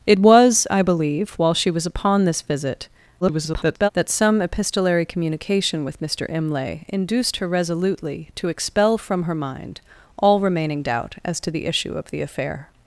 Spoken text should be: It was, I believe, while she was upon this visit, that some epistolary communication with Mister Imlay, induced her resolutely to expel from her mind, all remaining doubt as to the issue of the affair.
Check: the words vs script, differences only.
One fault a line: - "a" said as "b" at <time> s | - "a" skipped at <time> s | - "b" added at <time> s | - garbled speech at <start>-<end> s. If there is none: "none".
- garbled speech at 3.2-3.9 s